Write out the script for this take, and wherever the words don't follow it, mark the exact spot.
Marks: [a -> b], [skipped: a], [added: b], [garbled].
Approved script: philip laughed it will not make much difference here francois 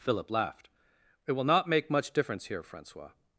philip laughed it will not make much difference here francois